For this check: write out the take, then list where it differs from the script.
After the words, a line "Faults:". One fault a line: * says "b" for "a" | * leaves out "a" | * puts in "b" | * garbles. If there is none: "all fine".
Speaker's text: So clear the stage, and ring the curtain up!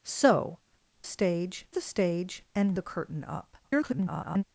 So stage the stage, and the curtain up! [garbled]
Faults:
* says "stage" for "clear"
* leaves out "ring"
* garbles